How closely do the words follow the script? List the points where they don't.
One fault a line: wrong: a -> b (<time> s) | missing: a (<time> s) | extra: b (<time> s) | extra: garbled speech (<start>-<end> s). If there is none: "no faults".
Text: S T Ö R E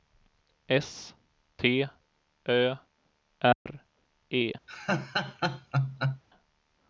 no faults